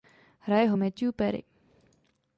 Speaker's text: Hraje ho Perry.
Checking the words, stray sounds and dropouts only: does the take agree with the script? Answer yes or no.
no